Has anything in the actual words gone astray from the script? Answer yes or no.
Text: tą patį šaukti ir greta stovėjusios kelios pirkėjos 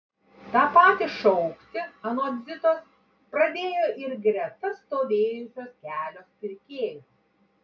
yes